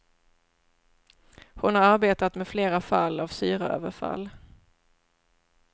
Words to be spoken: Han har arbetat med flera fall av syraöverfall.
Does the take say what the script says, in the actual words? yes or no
no